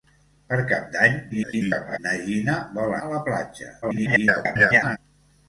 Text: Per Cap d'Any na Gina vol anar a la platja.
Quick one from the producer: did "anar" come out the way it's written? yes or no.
no